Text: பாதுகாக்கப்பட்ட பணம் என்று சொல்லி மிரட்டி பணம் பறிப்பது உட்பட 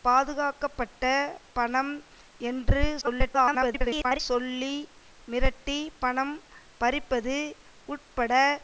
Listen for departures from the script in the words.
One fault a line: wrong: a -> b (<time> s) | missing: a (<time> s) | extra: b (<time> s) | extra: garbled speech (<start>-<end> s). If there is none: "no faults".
extra: garbled speech (3.0-4.2 s)